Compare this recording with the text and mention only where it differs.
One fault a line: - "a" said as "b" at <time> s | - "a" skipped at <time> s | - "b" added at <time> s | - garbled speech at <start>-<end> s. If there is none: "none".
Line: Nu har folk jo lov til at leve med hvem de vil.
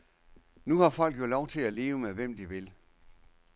none